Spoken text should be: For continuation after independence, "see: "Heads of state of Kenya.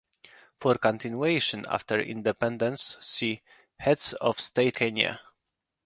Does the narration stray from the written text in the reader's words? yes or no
yes